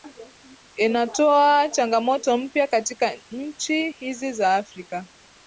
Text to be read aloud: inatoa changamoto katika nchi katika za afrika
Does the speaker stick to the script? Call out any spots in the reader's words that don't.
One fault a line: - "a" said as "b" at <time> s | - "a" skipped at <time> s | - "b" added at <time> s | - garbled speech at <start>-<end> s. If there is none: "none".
- "mpya" added at 2.4 s
- "katika" said as "hizi" at 3.9 s